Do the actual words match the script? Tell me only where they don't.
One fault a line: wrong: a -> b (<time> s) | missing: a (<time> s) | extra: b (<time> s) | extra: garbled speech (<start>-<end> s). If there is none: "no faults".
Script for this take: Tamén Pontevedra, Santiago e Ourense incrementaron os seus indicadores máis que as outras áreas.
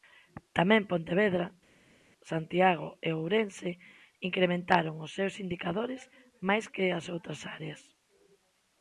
no faults